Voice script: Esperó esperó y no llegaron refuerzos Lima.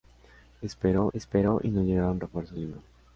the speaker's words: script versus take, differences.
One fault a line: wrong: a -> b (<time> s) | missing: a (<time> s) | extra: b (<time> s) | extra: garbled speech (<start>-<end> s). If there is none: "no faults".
no faults